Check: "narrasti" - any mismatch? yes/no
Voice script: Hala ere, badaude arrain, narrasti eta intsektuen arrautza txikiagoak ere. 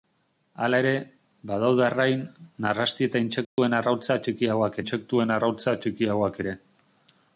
no